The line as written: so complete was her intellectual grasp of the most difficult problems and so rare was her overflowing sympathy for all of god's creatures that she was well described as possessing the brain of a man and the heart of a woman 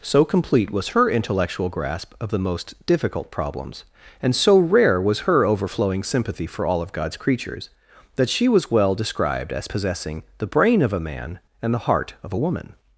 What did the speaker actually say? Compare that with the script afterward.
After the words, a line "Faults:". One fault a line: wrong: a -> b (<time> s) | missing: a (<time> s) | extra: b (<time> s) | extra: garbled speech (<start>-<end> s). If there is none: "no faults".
so complete was her intellectual grasp of the most difficult problems and so rare was her overflowing sympathy for all of god's creatures that she was well described as possessing the brain of a man and the heart of a woman
Faults:
no faults